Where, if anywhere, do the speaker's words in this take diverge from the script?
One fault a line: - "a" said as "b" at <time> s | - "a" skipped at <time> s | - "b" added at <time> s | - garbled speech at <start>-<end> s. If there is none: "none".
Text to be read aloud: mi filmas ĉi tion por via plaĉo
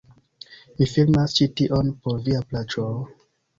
none